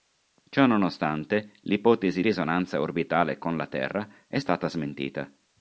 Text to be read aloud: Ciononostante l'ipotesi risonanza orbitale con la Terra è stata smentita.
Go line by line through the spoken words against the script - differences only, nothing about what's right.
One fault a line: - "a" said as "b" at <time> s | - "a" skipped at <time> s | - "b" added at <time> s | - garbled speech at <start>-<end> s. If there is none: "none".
none